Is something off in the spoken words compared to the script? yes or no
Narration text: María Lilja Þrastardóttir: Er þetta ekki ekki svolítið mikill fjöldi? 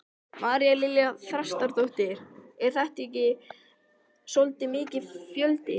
yes